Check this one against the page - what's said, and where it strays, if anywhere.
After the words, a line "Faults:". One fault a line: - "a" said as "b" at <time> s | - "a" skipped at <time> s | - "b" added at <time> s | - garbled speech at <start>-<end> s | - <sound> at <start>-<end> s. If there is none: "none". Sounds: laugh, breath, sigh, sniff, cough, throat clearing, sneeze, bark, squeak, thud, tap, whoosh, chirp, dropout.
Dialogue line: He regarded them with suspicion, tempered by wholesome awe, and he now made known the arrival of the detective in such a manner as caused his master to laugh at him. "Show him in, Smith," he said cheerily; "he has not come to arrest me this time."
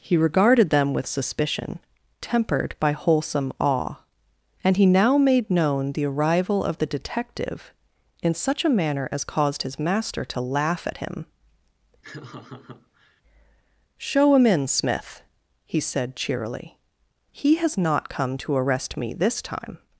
He regarded them with suspicion, tempered by wholesome awe, and he now made known the arrival of the detective in such a manner as caused his master to laugh at him. "Show him in, Smith," he said cheerily; "he has not come to arrest me this time."
Faults:
- laugh at 12.0-13.2 s